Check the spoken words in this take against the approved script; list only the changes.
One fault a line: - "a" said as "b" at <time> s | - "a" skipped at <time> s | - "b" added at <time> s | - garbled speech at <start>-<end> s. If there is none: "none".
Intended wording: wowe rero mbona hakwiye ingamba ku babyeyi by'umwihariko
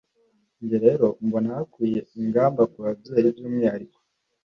- "wowe" said as "njye" at 0.6 s